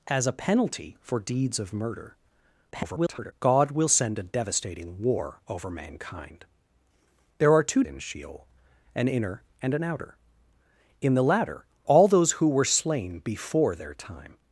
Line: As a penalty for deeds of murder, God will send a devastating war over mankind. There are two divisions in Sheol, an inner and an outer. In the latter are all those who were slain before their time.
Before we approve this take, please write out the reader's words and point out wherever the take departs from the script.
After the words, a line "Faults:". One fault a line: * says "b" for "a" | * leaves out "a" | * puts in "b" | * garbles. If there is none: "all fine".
As a penalty for deeds of murder, [garbled] God will send a devastating war over mankind. There are two in Sheol, an inner and an outer. In the latter all those who were slain before their time.
Faults:
* garbles
* leaves out "divisions"
* leaves out "are"